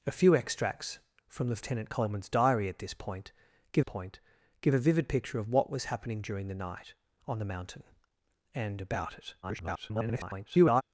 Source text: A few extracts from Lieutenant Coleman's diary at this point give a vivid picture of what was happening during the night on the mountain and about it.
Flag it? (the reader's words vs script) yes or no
yes